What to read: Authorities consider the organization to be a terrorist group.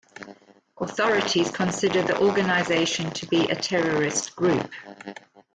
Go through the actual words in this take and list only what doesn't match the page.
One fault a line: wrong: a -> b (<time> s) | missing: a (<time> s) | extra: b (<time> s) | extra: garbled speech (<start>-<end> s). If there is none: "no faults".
no faults